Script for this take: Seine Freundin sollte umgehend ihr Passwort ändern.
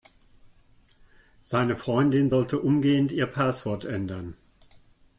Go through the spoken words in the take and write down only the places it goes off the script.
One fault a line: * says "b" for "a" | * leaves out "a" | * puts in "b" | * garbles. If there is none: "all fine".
all fine